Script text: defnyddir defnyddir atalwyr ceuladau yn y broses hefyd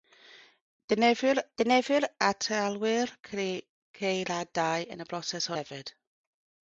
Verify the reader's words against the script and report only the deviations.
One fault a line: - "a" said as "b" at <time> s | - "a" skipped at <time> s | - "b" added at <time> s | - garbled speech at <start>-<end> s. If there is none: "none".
none